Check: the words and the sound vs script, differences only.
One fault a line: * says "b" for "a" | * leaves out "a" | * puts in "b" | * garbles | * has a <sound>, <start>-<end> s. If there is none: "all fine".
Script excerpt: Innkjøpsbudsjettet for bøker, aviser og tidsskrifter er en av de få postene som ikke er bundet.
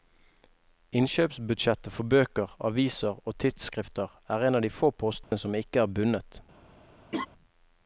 * has a dropout, 5.2-5.3 s
* has a laugh, 7.1-7.3 s